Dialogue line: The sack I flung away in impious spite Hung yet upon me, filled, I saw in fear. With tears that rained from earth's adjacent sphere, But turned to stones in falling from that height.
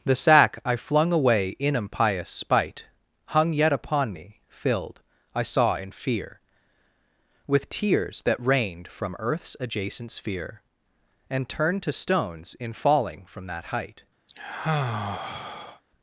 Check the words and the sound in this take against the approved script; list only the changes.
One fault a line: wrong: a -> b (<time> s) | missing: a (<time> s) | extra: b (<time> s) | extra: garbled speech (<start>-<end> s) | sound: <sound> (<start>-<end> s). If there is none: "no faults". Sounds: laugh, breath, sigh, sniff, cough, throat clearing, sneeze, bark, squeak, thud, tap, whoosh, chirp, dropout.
wrong: But -> And (11.3 s)
sound: sigh (14.3-15.8 s)